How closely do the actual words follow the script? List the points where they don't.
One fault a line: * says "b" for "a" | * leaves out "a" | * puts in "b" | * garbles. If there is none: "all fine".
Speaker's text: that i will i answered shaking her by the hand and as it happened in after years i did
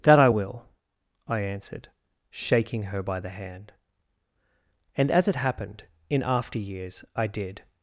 all fine